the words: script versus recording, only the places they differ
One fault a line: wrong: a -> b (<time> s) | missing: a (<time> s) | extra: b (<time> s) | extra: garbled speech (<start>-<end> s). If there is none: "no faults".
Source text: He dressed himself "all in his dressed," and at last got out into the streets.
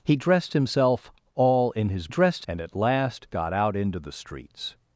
no faults